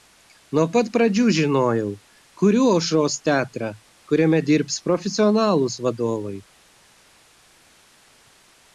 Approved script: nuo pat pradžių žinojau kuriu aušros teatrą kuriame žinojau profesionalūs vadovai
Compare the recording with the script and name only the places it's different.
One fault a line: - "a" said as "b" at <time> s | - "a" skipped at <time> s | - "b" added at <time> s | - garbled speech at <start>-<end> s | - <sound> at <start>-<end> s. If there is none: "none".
- "žinojau" said as "dirbs" at 4.5 s